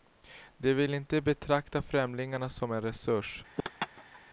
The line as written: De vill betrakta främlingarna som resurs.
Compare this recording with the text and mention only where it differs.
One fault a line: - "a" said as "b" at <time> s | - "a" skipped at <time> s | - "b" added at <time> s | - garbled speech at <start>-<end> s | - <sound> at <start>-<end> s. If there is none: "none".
- "inte" added at 0.9 s
- "en" added at 2.7 s
- laugh at 3.6-4.2 s